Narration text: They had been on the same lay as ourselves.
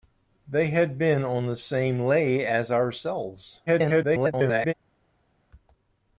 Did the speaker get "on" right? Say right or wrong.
right